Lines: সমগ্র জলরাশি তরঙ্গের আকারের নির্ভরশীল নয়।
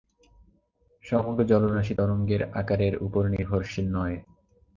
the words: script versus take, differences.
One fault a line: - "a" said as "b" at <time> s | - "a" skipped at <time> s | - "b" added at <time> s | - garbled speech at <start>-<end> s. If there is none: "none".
- "উপর" added at 3.1 s